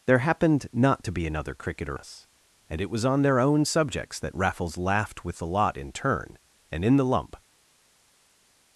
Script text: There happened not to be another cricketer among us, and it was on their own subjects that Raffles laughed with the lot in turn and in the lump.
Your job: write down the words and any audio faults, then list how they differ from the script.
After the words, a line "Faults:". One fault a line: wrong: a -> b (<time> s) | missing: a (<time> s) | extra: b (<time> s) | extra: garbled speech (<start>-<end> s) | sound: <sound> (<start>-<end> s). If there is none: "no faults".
There happened not to be another cricketer us, and it was on their own subjects that Raffles laughed with the lot in turn and in the lump.
Faults:
missing: among (2.0 s)